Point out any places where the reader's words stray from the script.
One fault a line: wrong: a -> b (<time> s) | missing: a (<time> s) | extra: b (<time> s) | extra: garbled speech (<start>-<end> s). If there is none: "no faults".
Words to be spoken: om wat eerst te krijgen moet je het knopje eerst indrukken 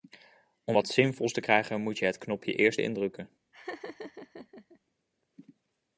wrong: eerst -> zinvols (0.9 s)